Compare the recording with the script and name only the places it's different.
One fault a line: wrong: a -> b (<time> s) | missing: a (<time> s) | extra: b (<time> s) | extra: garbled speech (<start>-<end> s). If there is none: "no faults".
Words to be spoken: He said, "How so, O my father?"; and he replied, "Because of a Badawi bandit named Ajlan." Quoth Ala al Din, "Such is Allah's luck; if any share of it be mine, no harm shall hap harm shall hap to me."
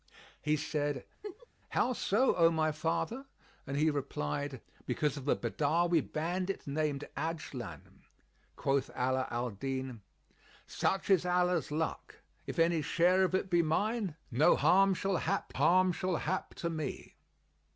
no faults